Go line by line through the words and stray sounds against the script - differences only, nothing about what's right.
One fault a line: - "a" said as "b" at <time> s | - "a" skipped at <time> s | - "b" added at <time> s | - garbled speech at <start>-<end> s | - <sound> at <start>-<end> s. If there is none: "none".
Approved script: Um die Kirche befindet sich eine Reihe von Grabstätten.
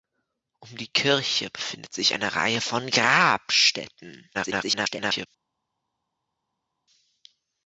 - garbled speech at 4.3-5.3 s